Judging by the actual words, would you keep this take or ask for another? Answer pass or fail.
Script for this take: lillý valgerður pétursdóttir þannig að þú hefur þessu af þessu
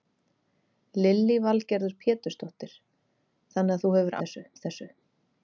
pass